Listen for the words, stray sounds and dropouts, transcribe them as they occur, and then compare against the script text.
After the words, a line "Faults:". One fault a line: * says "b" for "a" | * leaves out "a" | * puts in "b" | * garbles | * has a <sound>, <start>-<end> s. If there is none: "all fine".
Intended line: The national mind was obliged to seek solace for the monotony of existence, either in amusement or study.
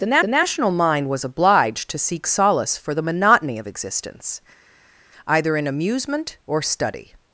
The the national mind was obliged to seek solace for the monotony of existence, either in amusement or study.
Faults:
* puts in "the"